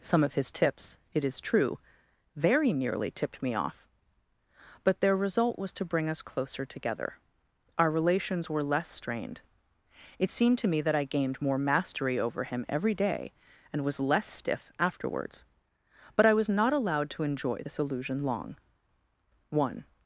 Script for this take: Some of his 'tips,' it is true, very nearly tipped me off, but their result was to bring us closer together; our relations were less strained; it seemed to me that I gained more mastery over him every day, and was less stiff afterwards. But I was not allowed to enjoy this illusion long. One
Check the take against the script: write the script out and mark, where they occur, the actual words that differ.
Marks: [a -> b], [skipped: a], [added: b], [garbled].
Some of his 'tips,' it is true, very nearly tipped me off, but their result was to bring us closer together; our relations were less strained; it seemed to me that I gained more mastery over him every day, and was less stiff afterwards. But I was not allowed to enjoy this illusion long. One